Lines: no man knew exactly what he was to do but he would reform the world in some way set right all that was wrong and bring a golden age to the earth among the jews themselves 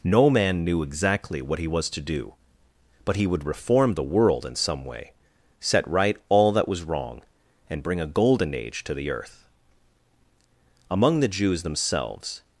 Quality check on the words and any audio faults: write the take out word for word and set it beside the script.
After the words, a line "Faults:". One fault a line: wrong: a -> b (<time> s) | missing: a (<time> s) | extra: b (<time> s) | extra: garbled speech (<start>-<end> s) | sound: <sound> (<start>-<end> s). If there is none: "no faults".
no man knew exactly what he was to do but he would reform the world in some way set right all that was wrong and bring a golden age to the earth among the jews themselves
Faults:
no faults